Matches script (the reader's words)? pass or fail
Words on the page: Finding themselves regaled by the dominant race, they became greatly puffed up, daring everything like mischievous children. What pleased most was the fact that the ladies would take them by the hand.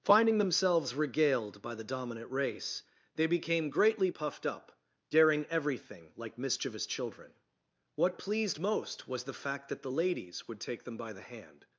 pass